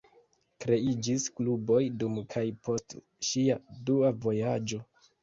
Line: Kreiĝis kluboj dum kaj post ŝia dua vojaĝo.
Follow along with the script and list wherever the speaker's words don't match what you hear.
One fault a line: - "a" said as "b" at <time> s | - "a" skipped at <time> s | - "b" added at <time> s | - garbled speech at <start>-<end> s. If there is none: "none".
none